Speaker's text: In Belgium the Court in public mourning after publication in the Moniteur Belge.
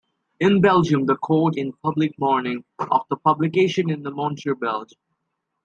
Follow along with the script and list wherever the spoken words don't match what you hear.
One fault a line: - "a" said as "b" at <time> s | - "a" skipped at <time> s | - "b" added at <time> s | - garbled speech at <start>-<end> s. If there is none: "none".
none